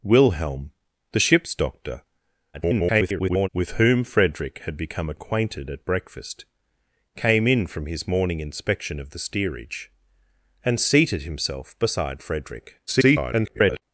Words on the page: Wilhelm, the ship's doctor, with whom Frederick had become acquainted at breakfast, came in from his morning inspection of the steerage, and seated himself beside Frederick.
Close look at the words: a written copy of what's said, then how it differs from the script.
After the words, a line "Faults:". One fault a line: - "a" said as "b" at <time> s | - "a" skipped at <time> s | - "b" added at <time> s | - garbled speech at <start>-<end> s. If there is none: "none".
Wilhelm, the ship's doctor, [garbled] with whom Frederick had become acquainted at breakfast, came in from his morning inspection of the steerage, and seated himself beside Frederick. [garbled]
Faults:
- garbled speech at 2.5-3.5 s
- garbled speech at 12.9-13.8 s